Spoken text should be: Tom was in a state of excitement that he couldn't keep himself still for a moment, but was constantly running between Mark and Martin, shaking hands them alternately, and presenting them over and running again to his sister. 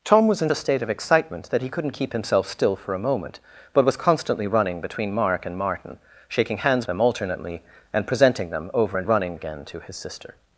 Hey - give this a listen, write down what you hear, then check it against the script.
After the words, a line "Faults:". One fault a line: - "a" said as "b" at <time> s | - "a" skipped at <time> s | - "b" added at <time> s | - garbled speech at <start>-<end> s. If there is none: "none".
Tom was in a state of excitement that he couldn't keep himself still for a moment, but was constantly running between Mark and Martin, shaking hands them alternately, and presenting them over and running again to his sister.
Faults:
none